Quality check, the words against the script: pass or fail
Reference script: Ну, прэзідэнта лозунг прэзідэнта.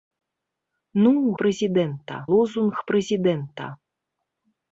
pass